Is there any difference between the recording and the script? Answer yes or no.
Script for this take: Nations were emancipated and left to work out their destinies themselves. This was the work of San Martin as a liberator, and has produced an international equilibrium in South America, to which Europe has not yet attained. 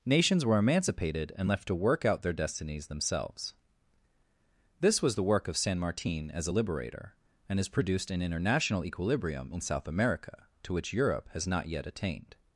no